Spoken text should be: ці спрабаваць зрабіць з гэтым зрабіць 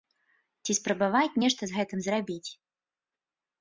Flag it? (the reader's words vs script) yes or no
yes